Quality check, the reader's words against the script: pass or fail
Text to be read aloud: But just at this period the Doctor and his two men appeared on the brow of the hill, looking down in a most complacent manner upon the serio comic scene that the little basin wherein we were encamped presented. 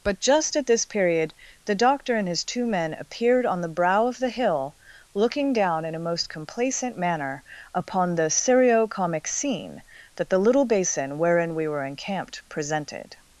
pass